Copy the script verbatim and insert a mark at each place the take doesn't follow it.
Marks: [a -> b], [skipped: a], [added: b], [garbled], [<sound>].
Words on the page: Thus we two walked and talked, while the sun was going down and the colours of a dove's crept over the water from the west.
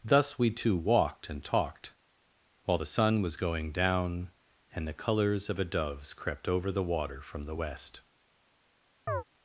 Thus we two walked and talked, while the sun was going down and the colours of a dove's crept over the water from the west. [chirp]